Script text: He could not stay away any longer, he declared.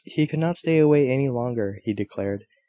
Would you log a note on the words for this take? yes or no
no